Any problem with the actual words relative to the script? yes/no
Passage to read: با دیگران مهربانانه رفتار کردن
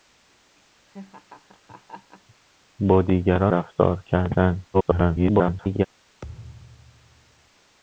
yes